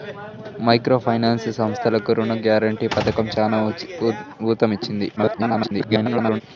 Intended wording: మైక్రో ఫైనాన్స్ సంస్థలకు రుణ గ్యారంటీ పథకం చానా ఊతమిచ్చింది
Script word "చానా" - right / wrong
right